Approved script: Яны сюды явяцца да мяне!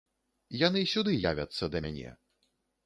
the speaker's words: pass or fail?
pass